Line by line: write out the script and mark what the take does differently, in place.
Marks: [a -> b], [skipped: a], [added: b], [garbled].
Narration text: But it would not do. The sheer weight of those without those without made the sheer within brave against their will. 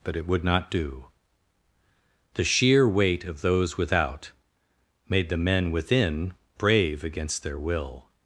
But it would not do. The sheer weight of those without [skipped: those without] made the [sheer -> men] within brave against their will.